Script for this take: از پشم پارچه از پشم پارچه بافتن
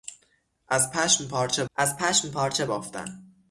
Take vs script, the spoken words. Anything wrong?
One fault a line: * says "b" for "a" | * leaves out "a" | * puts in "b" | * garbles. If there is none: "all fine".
all fine